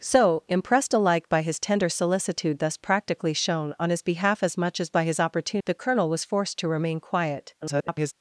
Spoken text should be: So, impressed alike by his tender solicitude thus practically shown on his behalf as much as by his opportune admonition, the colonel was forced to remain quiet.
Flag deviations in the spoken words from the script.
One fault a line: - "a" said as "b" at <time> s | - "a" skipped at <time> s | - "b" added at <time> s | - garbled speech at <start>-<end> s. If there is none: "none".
- "admonition" skipped at 5.6 s
- garbled speech at 7.6-8.1 s